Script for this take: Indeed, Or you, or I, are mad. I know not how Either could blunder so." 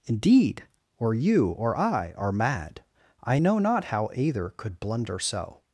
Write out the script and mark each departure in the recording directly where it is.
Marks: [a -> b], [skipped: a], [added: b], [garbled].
Indeed, Or you, or I, are mad. I know not how Either could blunder so."